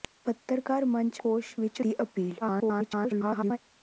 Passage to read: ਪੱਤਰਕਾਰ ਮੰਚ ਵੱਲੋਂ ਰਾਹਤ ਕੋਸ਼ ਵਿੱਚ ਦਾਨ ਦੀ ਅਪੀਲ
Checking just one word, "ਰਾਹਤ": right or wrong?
wrong